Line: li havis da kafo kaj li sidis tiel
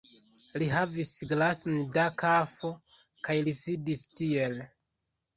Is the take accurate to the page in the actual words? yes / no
no